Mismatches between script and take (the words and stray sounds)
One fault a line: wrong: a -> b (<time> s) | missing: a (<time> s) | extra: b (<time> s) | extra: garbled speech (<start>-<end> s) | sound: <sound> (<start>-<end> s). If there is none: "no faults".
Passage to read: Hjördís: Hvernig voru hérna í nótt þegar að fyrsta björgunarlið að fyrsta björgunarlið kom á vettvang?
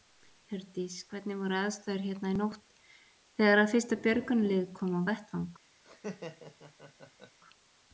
extra: aðstæður (1.6 s)
missing: að fyrsta björgunarlið (4.7 s)
sound: laugh (5.8-7.4 s)